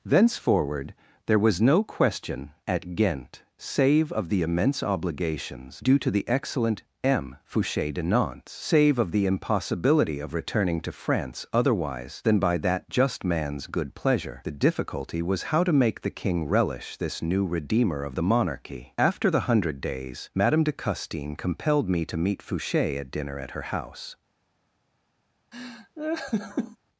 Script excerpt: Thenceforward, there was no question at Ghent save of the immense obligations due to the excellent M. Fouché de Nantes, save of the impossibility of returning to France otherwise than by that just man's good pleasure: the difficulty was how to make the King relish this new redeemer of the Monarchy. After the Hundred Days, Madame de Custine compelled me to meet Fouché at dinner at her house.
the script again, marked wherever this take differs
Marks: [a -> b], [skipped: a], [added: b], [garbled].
Thenceforward, there was no question at Ghent save of the immense obligations due to the excellent M. Fouché de Nantes, save of the impossibility of returning to France otherwise than by that just man's good pleasure: the difficulty was how to make the King relish this new redeemer of the Monarchy. After the Hundred Days, Madame de Custine compelled me to meet Fouché at dinner at her house.